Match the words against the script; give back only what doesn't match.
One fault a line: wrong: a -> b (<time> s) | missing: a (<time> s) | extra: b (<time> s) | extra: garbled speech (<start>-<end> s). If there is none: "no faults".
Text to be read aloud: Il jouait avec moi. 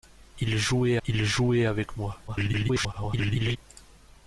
extra: il jouait (1.1 s)
extra: garbled speech (2.3-3.6 s)